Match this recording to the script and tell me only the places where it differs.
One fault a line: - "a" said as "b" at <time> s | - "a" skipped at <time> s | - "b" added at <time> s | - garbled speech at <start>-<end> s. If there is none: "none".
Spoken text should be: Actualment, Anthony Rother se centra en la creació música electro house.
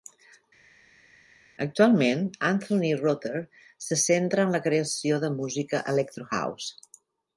- "de" added at 5.2 s